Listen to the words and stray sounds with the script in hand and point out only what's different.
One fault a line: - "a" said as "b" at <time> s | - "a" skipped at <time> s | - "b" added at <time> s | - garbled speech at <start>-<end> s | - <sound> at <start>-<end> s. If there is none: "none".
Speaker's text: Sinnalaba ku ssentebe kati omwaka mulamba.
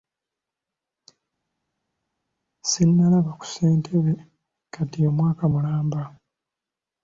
none